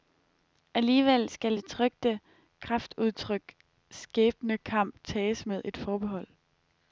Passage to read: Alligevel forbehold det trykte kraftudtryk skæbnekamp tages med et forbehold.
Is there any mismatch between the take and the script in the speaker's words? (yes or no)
yes